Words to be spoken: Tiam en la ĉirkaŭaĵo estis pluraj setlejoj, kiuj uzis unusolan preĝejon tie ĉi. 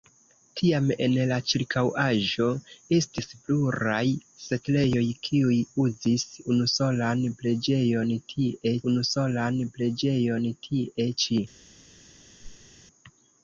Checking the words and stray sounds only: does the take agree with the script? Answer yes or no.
no